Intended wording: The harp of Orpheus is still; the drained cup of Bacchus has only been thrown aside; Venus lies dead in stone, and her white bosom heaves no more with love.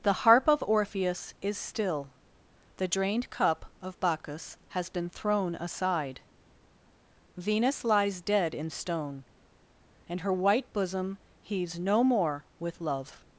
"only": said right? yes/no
no